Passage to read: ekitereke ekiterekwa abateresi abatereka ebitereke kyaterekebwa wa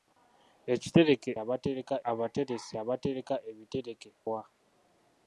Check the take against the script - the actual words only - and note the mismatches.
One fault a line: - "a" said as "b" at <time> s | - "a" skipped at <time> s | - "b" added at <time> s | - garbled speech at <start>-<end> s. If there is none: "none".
- "ekiterekwa" said as "abatereka" at 1.4 s
- "kyaterekebwa" skipped at 4.1 s